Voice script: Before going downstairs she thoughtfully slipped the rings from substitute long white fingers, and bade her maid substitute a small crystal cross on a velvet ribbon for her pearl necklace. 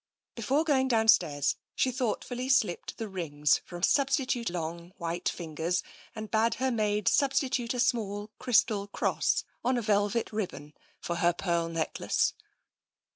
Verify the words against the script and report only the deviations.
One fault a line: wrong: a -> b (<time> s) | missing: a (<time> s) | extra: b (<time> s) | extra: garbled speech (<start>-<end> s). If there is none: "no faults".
no faults